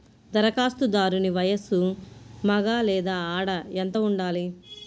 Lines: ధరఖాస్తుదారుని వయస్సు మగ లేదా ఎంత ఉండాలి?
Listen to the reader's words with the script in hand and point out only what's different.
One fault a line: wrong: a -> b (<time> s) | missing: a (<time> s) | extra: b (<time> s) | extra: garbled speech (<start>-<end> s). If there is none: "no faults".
extra: ఆడ (3.4 s)